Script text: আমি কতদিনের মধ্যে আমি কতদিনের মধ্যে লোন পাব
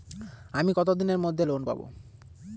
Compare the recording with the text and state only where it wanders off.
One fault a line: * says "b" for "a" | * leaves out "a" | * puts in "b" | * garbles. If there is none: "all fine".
* leaves out "আমি কতদিনের মধ্যে"